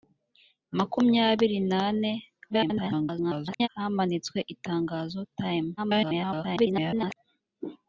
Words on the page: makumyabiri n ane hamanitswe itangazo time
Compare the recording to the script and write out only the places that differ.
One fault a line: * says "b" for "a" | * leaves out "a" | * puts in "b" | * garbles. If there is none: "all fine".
* garbles
* garbles